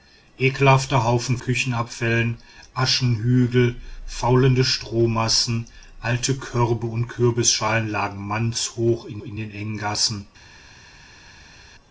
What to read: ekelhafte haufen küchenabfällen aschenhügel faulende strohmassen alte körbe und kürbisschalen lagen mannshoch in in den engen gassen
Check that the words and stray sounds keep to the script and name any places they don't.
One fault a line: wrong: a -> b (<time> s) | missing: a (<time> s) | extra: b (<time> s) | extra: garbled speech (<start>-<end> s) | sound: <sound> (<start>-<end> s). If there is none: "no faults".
no faults